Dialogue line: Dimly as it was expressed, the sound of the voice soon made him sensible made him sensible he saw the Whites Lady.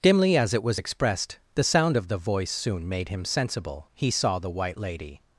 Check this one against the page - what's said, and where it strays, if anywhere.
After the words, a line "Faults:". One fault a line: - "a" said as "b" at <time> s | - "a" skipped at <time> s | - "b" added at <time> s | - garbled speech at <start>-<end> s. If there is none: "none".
Dimly as it was expressed, the sound of the voice soon made him sensible he saw the White Lady.
Faults:
- "made him sensible" skipped at 3.9 s
- "Whites" said as "White" at 4.5 s